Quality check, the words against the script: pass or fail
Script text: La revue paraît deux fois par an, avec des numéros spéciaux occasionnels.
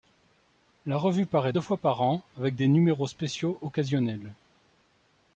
pass